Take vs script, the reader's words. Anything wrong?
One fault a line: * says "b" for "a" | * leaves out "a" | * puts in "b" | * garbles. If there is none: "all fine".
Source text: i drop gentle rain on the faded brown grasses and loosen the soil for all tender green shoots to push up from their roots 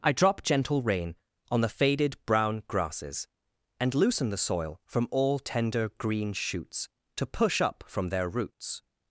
* says "from" for "for"